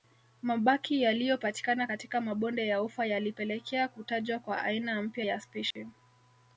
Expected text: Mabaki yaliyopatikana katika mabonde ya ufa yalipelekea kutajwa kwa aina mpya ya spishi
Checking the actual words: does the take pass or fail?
pass